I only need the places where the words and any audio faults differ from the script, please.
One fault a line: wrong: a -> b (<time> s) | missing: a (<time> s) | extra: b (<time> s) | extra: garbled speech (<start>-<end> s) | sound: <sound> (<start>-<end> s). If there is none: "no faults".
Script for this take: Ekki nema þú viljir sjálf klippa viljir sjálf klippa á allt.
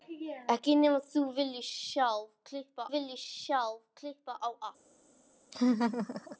sound: laugh (5.5-6.4 s)